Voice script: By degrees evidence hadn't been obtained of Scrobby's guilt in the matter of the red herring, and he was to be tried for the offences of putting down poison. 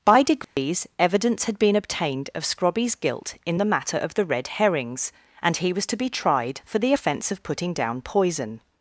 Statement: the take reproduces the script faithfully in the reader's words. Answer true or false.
false